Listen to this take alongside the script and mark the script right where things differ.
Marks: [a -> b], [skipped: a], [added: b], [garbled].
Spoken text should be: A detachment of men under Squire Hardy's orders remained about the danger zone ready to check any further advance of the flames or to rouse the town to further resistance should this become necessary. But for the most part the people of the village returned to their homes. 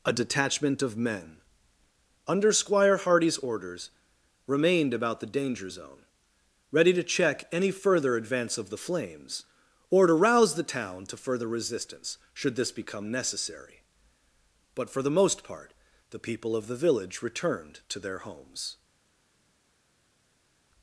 A detachment of men under Squire Hardy's orders remained about the danger zone ready to check any further advance of the flames or to rouse the town to further resistance should this become necessary. But for the most part the people of the village returned to their homes.